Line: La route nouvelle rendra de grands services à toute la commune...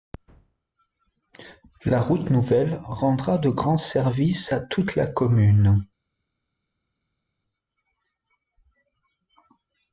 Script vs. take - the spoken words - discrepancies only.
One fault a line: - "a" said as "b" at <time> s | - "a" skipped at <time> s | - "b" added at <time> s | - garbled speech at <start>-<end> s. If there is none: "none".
none